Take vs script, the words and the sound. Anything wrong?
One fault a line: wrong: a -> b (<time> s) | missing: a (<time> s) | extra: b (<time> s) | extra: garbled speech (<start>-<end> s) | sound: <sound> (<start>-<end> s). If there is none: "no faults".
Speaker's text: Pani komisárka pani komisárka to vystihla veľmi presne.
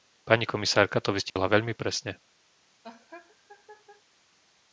missing: pani komisárka (1.0 s)
sound: dropout (1.3-1.4 s)
sound: laugh (2.8-4.0 s)